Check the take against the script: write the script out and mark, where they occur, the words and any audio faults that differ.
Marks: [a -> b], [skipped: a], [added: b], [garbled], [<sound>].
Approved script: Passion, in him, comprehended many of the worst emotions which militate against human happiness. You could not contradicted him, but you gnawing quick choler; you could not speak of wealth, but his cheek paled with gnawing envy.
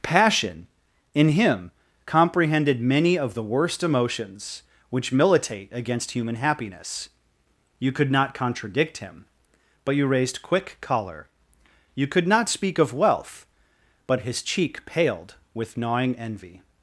Passion, in him, comprehended many of the worst emotions which militate against human happiness. You could not [contradicted -> contradict] him, but you [gnawing -> raised] quick choler; you could not speak of wealth, but his cheek paled with gnawing envy.